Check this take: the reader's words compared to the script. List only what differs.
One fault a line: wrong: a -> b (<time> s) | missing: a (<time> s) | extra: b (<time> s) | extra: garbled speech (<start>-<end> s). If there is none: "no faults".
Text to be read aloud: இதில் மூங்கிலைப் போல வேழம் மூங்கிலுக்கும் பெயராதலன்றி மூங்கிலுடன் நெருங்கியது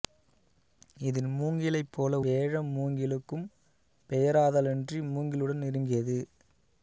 no faults